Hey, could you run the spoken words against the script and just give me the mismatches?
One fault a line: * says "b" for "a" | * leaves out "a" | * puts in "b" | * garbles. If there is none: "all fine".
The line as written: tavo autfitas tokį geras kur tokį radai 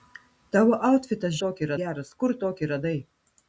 all fine